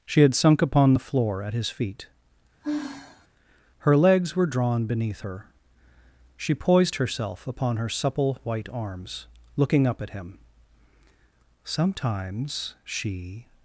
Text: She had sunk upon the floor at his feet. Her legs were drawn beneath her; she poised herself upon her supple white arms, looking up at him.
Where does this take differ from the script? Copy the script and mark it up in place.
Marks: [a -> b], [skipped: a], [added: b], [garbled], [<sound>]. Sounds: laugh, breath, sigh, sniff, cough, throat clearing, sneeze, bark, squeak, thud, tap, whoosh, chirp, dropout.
She had sunk upon the floor at his feet. [sigh] Her legs were drawn beneath her; she poised herself upon her supple white arms, looking up at him. [added: Sometimes she]